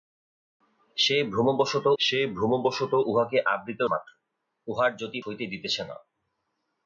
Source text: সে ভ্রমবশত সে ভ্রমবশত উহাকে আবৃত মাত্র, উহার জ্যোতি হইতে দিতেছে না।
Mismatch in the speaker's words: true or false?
false